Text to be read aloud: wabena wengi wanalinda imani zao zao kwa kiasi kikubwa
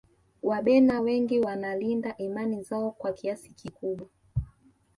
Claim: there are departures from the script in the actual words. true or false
true